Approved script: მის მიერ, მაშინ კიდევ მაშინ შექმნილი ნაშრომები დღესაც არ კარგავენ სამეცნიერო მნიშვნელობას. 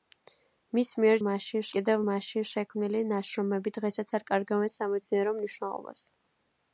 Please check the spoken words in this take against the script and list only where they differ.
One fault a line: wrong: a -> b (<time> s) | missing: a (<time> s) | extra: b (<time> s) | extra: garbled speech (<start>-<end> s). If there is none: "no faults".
no faults